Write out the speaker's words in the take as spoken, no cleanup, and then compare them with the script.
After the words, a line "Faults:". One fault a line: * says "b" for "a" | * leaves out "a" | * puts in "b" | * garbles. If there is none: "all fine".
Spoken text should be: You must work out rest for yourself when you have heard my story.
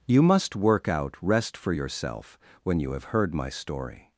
You must work out rest for yourself when you have heard my story.
Faults:
all fine